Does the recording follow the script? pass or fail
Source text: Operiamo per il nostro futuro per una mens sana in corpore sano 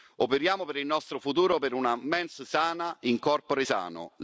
pass